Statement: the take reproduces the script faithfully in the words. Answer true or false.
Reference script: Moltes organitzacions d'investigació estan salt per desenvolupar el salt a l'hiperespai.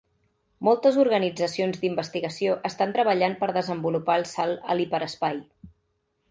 false